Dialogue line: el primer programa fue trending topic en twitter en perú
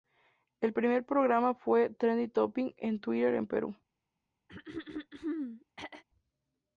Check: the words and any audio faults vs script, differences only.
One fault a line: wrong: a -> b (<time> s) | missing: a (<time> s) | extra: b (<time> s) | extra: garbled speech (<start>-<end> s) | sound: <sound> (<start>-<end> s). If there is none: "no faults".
sound: throat clearing (4.5-6.0 s)